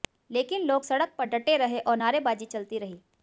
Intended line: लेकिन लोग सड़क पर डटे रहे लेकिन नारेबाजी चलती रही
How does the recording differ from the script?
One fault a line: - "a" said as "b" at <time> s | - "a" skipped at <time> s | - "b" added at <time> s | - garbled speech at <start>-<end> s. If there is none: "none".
- "लेकिन" said as "और" at 1.8 s